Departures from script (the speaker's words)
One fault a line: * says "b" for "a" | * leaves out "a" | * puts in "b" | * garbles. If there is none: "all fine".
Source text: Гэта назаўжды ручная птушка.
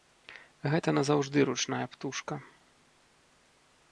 all fine